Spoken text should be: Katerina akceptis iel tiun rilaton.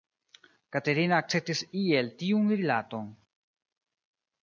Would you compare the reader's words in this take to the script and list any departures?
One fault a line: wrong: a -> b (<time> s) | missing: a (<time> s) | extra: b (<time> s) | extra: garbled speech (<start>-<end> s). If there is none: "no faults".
no faults